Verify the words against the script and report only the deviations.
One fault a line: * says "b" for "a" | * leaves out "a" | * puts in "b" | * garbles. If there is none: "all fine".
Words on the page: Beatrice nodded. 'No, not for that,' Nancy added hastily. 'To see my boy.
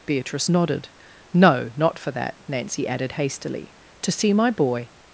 all fine